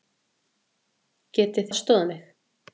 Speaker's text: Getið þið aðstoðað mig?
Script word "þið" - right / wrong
wrong